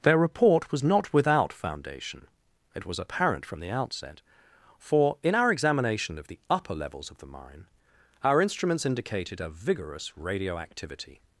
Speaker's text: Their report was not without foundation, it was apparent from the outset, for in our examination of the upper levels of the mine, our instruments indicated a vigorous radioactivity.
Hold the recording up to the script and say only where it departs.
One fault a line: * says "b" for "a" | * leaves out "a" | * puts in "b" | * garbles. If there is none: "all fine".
all fine